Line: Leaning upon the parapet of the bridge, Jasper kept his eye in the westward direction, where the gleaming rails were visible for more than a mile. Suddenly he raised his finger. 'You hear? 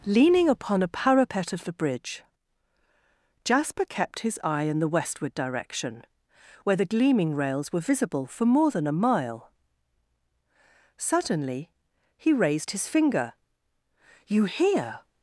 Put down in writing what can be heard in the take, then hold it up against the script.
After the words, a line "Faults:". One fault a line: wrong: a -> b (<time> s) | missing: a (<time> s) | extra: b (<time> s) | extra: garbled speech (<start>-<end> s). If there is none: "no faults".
Leaning upon a parapet of the bridge, Jasper kept his eye in the westward direction, where the gleaming rails were visible for more than a mile. Suddenly he raised his finger. 'You hear?
Faults:
wrong: the -> a (0.8 s)